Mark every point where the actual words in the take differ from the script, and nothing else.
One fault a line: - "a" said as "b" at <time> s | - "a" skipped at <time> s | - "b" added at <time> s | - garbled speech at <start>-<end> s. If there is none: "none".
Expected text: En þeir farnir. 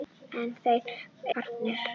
none